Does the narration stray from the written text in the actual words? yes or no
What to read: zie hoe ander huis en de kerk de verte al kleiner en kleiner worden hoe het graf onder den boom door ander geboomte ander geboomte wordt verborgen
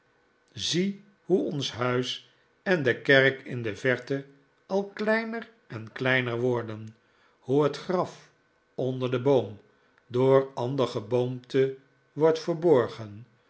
yes